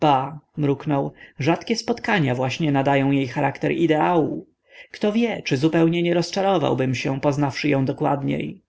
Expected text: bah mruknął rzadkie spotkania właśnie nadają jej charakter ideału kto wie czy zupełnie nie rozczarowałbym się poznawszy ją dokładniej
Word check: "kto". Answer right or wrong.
right